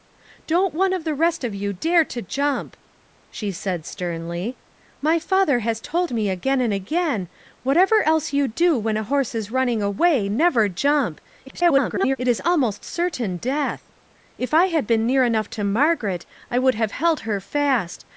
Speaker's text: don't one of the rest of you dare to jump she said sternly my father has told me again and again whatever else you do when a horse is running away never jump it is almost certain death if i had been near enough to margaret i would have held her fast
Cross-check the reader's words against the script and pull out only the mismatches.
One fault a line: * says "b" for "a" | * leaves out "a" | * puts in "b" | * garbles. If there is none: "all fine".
* garbles